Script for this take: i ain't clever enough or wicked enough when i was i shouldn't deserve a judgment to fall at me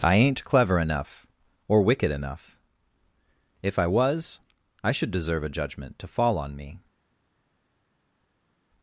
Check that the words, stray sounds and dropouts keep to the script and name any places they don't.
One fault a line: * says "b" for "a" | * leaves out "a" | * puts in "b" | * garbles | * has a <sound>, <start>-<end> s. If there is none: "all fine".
* says "if" for "when"
* says "should" for "shouldn't"
* says "on" for "at"